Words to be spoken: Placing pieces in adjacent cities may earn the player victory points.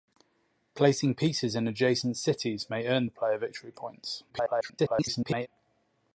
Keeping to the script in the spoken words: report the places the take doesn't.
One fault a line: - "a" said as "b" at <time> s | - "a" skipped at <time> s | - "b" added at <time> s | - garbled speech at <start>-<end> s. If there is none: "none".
- garbled speech at 4.3-5.5 s